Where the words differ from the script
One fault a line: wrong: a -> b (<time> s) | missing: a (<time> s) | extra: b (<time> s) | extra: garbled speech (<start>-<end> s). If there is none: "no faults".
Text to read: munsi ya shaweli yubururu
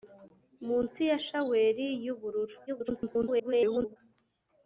extra: garbled speech (2.7-4.0 s)